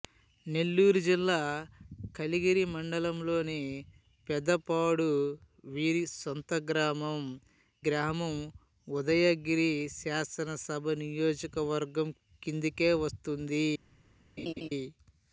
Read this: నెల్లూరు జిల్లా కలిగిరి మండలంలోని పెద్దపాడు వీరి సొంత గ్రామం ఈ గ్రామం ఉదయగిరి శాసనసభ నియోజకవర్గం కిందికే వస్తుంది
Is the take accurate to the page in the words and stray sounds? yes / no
no